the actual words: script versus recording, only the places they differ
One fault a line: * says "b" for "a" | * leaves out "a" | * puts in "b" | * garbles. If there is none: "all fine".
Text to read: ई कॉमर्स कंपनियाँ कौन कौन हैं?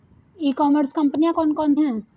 all fine